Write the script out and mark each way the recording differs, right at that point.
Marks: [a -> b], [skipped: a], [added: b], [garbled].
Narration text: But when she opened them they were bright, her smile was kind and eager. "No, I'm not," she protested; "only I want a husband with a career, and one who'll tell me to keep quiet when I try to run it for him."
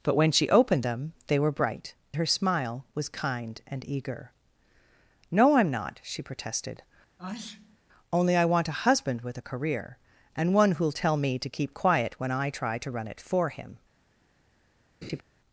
But when she opened them they were bright, her smile was kind and eager. "No, I'm not," she protested; "only I want a husband with a career, and one who'll tell me to keep quiet when I try to run it for him."